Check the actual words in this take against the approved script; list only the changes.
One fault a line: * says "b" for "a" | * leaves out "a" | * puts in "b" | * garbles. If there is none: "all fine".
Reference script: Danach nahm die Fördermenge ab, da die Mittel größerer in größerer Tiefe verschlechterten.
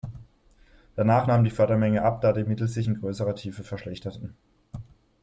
* says "sich" for "größerer"